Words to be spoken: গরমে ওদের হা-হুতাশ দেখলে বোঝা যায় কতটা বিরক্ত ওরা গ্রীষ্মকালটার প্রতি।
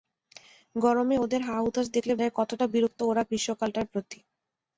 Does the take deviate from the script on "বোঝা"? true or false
true